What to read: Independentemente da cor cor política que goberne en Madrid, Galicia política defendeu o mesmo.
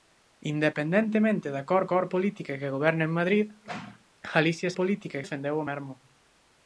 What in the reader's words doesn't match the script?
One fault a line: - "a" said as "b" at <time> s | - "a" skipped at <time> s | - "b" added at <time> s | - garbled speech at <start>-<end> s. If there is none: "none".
none